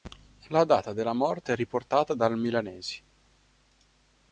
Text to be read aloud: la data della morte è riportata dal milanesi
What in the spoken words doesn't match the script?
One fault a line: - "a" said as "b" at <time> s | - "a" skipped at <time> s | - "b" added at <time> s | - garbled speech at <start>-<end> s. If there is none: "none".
none